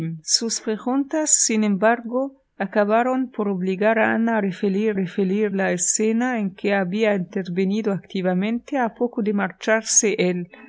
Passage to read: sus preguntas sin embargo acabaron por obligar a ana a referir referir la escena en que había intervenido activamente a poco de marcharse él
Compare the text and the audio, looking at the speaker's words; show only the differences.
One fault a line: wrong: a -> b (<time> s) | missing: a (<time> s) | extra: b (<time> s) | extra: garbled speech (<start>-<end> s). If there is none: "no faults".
no faults